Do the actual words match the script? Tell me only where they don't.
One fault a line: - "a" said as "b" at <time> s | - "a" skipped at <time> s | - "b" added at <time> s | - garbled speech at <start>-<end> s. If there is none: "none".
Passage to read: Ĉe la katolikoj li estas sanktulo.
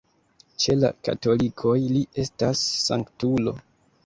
none